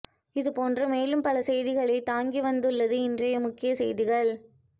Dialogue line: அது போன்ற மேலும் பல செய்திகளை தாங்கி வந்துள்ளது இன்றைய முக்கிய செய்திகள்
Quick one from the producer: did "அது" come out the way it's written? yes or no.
no